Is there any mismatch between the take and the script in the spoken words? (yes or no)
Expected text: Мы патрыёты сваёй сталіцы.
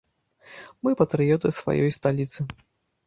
no